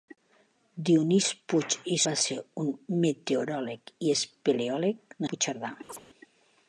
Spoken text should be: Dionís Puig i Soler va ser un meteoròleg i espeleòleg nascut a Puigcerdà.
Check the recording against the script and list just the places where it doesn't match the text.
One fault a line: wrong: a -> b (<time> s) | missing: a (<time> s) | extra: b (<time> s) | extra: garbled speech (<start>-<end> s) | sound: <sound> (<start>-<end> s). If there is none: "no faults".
missing: Soler (2.0 s)
missing: nascut (5.2 s)
sound: chirp (5.9-6.0 s)